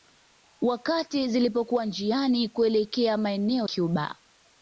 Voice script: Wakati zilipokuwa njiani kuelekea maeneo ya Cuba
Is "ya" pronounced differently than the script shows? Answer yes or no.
yes